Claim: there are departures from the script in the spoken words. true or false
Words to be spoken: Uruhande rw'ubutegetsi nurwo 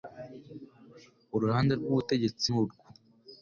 false